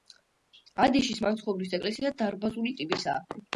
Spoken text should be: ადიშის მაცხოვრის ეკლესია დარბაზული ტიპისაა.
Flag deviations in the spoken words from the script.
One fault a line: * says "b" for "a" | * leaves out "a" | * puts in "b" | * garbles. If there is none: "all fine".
all fine